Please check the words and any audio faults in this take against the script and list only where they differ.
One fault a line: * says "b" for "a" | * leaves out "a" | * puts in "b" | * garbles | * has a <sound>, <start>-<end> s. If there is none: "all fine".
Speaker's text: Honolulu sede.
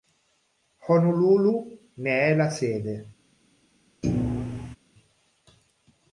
* puts in "ne è la"
* has a thud, 4.0-4.8 s